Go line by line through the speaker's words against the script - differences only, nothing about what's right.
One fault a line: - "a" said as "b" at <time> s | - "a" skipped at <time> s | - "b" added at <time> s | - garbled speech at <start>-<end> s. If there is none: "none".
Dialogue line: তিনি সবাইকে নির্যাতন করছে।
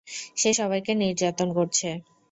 - "তিনি" said as "সে" at 0.4 s